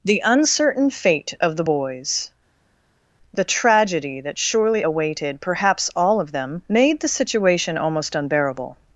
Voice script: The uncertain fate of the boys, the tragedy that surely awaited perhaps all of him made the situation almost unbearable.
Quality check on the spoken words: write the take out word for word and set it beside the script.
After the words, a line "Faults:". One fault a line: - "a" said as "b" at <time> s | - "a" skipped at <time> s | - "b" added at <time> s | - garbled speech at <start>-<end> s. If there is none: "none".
The uncertain fate of the boys, the tragedy that surely awaited perhaps all of them made the situation almost unbearable.
Faults:
- "him" said as "them" at 6.3 s